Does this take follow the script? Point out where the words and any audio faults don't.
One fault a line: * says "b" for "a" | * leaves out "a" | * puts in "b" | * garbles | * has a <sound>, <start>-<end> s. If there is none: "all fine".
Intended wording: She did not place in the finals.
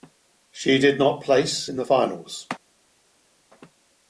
all fine